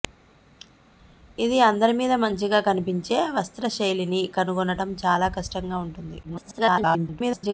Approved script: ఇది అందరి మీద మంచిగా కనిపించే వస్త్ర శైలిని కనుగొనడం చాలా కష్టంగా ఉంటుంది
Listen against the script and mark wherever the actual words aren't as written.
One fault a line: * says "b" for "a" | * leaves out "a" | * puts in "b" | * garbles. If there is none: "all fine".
* garbles